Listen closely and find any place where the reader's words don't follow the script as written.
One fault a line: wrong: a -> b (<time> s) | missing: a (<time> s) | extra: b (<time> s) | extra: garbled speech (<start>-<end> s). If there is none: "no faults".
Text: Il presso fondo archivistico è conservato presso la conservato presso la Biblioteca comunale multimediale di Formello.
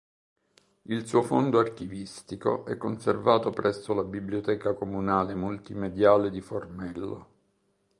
wrong: presso -> suo (1.1 s)
missing: conservato presso la (4.0 s)